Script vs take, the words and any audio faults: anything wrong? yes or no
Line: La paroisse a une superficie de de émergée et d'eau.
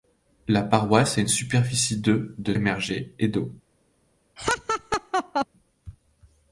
yes